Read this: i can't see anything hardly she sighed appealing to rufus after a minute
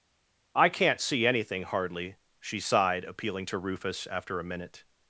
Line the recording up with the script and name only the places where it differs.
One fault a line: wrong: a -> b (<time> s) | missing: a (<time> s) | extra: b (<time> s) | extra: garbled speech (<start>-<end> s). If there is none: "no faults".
no faults